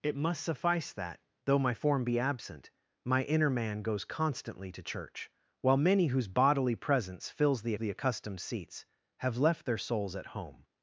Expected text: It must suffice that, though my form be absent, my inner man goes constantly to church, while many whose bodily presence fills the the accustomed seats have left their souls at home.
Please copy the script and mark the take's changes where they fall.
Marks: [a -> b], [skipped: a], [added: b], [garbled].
It must suffice that, though my form be absent, my inner man goes constantly to church, while many whose bodily presence fills the the accustomed seats have left their souls at home.